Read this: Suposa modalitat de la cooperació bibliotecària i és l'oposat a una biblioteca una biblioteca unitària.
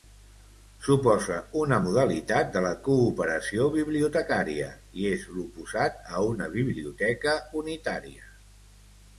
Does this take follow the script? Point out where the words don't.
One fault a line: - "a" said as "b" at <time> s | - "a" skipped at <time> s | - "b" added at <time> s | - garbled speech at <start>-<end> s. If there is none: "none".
- "una" added at 1.6 s
- "una biblioteca" skipped at 7.4 s